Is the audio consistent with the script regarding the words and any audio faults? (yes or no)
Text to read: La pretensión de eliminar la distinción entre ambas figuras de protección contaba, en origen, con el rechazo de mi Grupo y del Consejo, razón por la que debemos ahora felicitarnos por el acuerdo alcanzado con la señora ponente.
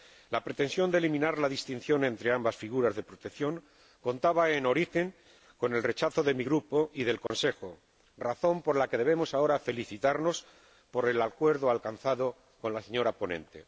no